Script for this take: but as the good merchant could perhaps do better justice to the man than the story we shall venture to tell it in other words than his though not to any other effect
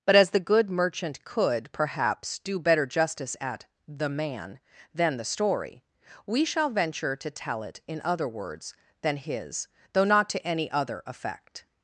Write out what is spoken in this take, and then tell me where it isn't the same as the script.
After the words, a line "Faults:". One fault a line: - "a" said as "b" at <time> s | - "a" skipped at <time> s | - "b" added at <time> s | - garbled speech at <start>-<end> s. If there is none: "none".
but as the good merchant could perhaps do better justice at the man than the story we shall venture to tell it in other words than his though not to any other effect
Faults:
- "to" said as "at" at 3.4 s